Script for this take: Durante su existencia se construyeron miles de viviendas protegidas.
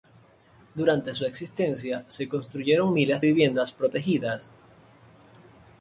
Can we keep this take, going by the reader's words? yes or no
no